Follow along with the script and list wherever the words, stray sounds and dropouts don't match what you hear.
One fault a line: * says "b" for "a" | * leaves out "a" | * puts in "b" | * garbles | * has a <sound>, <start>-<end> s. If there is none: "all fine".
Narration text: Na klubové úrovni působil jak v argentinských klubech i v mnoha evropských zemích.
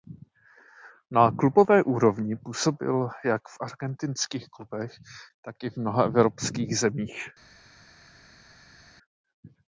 * puts in "tak"